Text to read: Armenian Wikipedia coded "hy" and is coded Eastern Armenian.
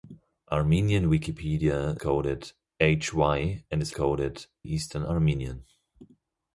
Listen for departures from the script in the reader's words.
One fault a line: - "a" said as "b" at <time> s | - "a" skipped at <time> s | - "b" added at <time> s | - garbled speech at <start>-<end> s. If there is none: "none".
none